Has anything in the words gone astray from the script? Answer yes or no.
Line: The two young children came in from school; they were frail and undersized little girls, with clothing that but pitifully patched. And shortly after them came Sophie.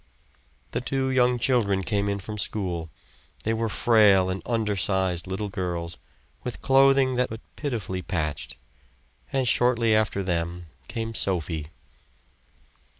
no